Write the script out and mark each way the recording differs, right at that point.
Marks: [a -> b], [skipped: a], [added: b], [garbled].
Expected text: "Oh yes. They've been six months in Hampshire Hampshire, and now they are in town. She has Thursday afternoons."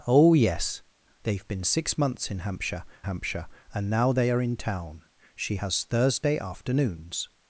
"Oh yes. They've been six months in Hampshire Hampshire, and now they are in town. She has Thursday afternoons."